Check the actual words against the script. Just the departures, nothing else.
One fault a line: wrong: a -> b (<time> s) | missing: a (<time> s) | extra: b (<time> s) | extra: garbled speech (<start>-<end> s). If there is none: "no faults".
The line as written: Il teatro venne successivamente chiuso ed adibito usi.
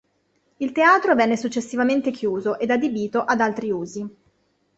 extra: ad altri (3.2 s)